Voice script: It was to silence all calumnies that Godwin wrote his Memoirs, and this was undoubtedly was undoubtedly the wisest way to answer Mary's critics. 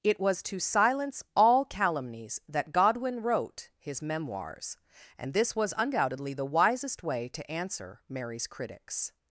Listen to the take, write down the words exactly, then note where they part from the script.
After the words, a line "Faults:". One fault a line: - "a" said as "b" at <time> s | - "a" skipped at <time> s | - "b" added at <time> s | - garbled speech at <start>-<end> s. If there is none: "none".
It was to silence all calumnies that Godwin wrote his Memoirs, and this was undoubtedly the wisest way to answer Mary's critics.
Faults:
- "was undoubtedly" skipped at 6.3 s